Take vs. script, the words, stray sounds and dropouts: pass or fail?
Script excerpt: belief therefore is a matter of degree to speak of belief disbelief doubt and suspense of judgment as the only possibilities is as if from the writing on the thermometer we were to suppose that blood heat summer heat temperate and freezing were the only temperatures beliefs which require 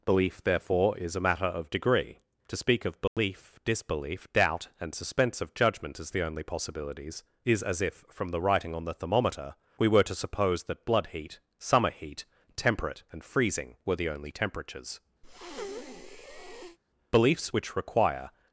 fail